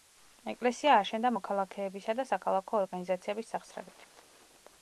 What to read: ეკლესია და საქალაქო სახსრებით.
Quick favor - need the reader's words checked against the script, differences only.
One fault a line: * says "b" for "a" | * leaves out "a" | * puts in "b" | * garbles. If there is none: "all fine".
* puts in "აშენდა მოქალაქეებისა"
* puts in "ორგანიზაციების"